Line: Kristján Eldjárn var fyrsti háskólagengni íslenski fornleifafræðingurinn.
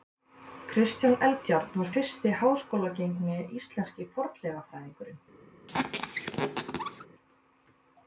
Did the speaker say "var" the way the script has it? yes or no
yes